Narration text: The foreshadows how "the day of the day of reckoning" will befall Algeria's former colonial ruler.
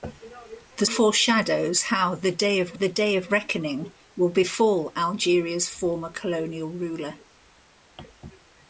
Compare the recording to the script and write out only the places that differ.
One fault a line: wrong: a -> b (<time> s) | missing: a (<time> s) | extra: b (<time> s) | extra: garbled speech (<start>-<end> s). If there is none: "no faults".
no faults